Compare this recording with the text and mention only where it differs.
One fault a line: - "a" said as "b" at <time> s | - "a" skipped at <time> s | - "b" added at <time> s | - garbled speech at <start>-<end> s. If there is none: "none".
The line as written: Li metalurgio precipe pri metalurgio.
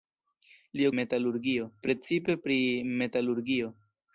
none